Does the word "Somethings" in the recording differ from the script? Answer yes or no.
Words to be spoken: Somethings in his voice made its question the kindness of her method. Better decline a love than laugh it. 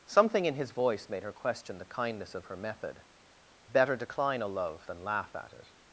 yes